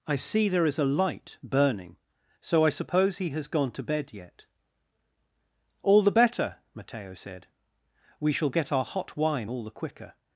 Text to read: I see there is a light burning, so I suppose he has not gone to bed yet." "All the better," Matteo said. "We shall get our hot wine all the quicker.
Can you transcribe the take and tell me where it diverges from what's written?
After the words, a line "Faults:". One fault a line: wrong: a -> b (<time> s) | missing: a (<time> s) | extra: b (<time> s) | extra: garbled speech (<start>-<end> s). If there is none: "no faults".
I see there is a light burning, so I suppose he has gone to bed yet." "All the better," Matteo said. "We shall get our hot wine all the quicker.
Faults:
missing: not (3.5 s)